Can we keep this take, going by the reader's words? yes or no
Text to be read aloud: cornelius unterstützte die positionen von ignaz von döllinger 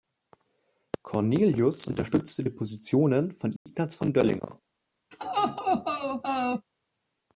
yes